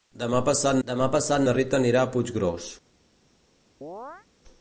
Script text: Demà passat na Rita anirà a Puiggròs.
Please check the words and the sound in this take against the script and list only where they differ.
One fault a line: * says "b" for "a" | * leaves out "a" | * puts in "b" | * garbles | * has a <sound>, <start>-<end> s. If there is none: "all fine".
* puts in "demà passat"
* has a chirp, 3.8-4.3 s